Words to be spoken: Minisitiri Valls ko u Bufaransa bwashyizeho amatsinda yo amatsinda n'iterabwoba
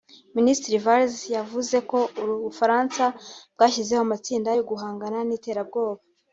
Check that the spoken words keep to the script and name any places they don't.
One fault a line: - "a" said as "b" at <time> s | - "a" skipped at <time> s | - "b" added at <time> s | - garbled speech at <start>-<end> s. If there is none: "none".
- "yavuze" added at 1.4 s
- "amatsinda" said as "guhangana" at 4.7 s